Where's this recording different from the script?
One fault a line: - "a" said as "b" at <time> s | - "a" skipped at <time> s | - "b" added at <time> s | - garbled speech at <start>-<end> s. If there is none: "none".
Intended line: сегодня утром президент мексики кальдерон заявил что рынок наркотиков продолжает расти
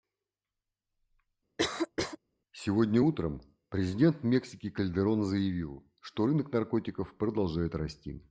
none